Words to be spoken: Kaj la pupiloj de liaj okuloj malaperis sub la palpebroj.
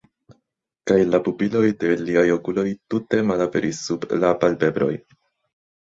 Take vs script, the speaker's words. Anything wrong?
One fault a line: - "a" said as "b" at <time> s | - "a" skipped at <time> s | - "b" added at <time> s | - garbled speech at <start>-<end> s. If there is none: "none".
- "tute" added at 3.0 s